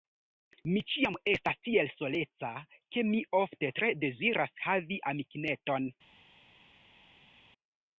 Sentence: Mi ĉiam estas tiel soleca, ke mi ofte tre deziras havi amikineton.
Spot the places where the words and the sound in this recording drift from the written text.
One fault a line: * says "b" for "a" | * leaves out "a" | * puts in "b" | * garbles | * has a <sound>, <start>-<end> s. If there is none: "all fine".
all fine